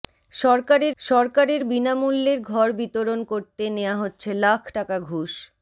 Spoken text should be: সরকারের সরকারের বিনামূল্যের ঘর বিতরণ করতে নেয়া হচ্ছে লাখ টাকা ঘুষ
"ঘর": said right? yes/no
yes